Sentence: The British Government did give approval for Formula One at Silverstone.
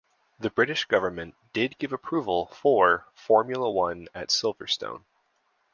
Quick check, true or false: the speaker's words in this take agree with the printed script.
true